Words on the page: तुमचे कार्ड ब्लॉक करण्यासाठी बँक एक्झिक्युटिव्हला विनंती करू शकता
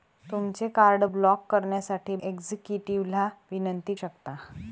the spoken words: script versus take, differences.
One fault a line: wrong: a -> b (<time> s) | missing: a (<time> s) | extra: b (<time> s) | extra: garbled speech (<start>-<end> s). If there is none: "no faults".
missing: बँक (2.2 s)
missing: करू (3.9 s)